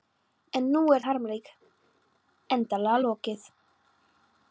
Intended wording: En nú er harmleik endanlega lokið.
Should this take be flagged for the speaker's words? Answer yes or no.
no